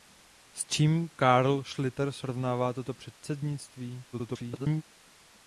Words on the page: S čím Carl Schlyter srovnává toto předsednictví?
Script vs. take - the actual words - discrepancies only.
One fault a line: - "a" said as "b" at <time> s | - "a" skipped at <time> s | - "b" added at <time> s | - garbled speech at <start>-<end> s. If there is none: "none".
- garbled speech at 4.1-4.8 s